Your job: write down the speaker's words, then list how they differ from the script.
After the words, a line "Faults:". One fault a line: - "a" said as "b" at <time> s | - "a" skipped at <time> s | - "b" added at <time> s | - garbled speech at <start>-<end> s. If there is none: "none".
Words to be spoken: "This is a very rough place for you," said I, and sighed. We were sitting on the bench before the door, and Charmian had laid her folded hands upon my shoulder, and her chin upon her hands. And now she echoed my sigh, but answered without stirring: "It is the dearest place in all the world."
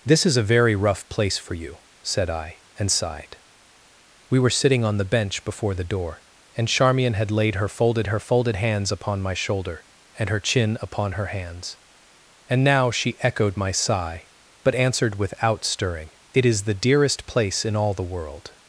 "This is a very rough place for you," said I, and sighed. We were sitting on the bench before the door, and Charmian had laid her folded her folded hands upon my shoulder, and her chin upon her hands. And now she echoed my sigh, but answered without stirring: "It is the dearest place in all the world."
Faults:
- "her folded" added at 8.1 s